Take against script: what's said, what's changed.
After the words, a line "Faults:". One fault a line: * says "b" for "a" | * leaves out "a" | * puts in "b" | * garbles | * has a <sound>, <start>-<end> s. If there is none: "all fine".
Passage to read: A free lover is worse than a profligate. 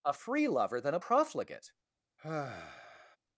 A free lover than a profligate.
Faults:
* leaves out "is worse"
* has a sigh, 2.2-3.2 s